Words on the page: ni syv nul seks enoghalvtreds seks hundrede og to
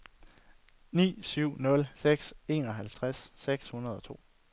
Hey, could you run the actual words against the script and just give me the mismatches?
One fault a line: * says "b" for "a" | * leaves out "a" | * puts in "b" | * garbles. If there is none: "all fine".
all fine